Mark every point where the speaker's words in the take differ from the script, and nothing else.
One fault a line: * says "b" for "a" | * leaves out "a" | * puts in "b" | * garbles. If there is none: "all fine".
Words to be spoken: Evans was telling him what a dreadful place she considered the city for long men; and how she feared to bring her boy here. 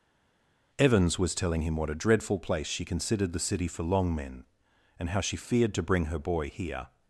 all fine